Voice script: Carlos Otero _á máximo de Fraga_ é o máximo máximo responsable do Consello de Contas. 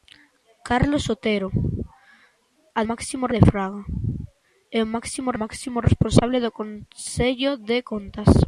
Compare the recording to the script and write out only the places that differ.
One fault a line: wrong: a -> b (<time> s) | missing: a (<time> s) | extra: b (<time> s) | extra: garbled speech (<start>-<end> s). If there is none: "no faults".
no faults